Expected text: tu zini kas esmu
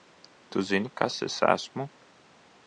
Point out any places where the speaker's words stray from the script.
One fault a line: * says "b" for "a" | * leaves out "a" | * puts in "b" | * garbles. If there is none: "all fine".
* puts in "es"